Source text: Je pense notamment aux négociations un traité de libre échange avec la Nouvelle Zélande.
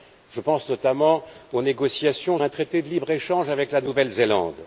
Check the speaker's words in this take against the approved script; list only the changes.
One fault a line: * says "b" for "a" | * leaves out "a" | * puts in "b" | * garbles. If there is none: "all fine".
all fine